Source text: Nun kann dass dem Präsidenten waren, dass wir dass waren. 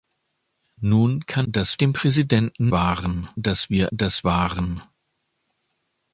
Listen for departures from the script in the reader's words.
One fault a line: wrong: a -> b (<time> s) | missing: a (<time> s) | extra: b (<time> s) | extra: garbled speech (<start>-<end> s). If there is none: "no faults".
no faults